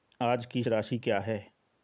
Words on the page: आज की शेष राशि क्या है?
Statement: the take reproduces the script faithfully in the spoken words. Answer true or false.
false